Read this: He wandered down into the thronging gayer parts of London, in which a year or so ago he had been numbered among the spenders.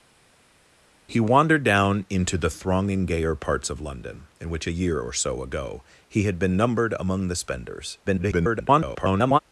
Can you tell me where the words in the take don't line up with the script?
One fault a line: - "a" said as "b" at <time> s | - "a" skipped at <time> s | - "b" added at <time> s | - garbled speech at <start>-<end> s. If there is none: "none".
- garbled speech at 8.0-9.4 s